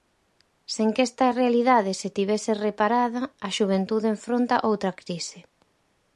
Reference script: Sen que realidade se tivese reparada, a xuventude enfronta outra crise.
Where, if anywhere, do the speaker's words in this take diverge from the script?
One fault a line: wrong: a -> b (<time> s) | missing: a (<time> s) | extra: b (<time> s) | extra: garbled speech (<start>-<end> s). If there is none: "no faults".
extra: esta (1.1 s)